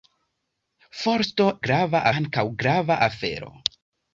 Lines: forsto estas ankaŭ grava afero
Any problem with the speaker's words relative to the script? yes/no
yes